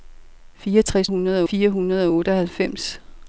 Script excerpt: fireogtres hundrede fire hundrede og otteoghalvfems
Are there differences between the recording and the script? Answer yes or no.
no